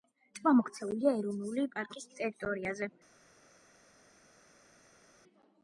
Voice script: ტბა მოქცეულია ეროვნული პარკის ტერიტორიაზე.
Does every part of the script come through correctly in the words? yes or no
yes